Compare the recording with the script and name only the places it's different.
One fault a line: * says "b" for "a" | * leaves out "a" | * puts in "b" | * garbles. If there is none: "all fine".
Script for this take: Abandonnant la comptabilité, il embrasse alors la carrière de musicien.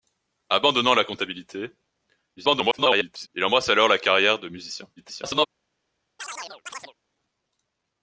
* garbles
* garbles